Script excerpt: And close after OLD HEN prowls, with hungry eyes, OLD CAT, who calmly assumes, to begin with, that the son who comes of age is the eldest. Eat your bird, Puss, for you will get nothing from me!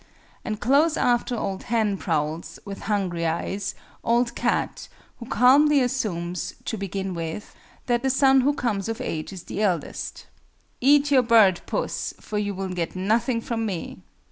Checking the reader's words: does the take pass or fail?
pass